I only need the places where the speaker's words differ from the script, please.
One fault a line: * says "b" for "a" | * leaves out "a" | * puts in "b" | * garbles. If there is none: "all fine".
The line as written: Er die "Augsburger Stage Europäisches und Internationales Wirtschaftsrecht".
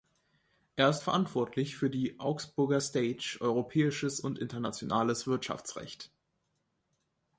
* puts in "ist verantwortlich für"